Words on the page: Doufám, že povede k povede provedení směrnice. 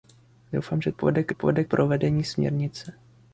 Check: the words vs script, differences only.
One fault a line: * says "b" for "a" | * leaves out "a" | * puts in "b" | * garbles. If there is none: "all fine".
all fine